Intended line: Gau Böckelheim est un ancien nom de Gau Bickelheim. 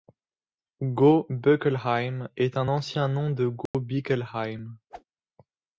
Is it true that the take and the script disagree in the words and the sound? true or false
true